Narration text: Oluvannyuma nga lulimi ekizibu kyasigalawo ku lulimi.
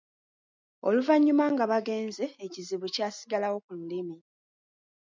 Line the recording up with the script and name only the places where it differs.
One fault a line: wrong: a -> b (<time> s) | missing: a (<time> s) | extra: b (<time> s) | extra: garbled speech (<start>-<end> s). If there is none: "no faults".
wrong: lulimi -> bagenze (1.7 s)